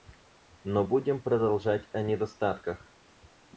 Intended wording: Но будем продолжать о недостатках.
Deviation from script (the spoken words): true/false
false